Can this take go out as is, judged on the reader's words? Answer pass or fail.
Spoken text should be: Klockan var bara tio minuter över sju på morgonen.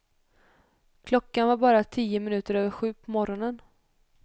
pass